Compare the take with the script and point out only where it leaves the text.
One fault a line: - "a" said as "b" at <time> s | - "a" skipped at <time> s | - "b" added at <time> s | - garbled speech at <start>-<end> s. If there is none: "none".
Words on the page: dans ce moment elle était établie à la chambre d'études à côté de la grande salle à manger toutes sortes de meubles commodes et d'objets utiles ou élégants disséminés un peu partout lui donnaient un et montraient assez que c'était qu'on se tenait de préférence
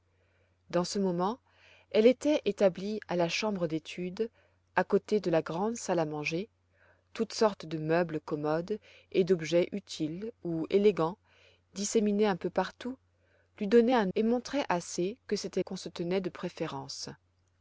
none